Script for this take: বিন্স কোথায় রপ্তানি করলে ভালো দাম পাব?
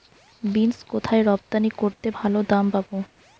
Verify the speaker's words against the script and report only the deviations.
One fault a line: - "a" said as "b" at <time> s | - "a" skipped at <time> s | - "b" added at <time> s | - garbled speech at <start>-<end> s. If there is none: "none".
none